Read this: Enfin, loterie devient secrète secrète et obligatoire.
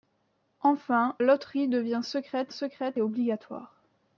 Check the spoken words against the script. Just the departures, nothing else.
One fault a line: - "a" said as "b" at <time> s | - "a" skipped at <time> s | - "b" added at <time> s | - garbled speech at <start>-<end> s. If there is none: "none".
none